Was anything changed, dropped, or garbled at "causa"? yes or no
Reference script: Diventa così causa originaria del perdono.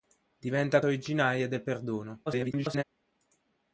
yes